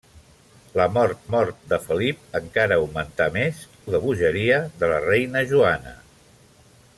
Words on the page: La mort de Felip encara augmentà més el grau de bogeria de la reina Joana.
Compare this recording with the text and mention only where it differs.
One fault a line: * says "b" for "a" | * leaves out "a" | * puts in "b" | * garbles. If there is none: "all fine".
* puts in "mort"
* leaves out "el grau"